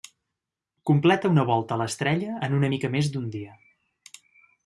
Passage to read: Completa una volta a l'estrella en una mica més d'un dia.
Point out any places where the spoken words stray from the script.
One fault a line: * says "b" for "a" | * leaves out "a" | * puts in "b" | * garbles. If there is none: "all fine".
all fine